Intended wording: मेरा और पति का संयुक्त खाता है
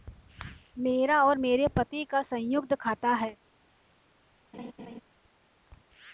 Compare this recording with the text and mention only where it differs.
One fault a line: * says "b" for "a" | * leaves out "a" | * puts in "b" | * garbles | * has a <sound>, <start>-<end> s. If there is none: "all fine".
* puts in "मेरे"
* has a laugh, 4.5-5.0 s